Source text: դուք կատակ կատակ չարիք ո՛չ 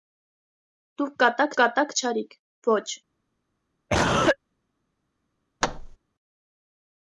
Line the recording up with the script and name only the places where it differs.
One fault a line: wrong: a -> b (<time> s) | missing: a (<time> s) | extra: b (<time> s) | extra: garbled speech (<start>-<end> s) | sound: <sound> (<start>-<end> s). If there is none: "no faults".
sound: cough (3.9-4.4 s)
sound: thud (5.6-6.0 s)